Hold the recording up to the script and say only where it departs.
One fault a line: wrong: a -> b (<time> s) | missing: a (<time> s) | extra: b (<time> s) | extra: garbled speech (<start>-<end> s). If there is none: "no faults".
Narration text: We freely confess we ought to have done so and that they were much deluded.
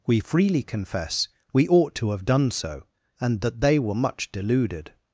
no faults